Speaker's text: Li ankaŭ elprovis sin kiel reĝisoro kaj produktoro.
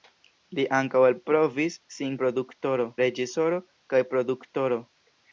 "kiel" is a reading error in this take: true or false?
true